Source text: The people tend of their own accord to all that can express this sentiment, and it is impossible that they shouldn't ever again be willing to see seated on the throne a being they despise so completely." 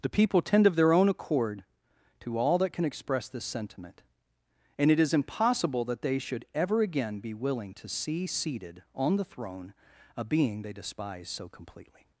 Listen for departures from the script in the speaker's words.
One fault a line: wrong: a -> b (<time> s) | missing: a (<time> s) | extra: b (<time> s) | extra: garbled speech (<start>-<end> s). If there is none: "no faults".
wrong: shouldn't -> should (6.2 s)